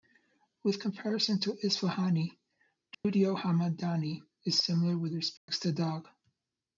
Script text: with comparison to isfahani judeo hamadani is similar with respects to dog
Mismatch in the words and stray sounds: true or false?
true